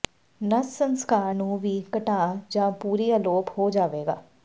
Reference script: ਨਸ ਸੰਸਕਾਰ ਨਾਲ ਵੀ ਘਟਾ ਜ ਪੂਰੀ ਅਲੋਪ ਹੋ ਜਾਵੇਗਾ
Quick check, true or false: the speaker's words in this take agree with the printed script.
false